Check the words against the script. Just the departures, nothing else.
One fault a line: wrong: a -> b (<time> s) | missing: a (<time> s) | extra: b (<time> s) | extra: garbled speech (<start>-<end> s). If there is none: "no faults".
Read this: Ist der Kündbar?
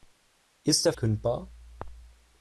no faults